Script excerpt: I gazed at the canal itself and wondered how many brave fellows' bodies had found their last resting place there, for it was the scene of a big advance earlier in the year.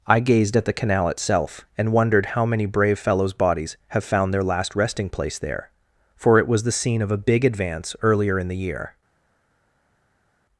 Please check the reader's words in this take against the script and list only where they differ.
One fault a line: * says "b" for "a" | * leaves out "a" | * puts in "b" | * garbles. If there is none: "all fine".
* says "have" for "had"